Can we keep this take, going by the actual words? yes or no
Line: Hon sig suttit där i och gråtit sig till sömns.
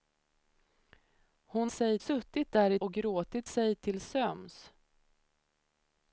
yes